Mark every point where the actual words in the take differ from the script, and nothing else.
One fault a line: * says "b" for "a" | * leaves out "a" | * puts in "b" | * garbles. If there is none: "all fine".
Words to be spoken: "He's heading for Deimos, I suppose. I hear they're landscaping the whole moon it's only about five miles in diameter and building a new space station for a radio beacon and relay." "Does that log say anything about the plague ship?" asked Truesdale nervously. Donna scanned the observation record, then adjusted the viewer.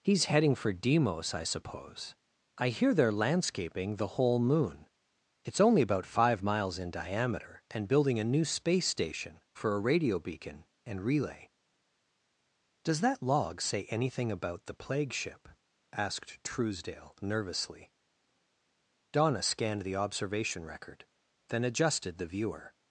all fine